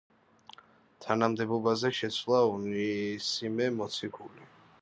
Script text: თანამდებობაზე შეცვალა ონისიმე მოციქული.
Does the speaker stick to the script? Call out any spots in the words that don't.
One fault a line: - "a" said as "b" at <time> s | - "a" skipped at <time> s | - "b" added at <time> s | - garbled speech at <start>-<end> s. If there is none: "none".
none